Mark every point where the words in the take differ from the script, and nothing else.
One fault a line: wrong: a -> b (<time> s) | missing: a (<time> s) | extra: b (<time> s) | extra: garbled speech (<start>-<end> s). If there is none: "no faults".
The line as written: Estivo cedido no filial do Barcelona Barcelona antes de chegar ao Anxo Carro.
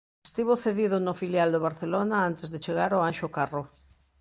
missing: Barcelona (2.2 s)